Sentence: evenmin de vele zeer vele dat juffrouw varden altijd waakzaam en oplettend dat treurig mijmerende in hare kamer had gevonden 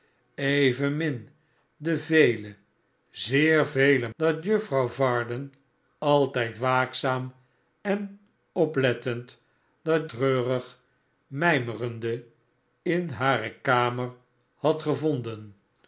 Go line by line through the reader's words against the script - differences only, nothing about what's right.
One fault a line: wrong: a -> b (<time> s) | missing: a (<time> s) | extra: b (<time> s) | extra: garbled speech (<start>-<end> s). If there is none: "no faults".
no faults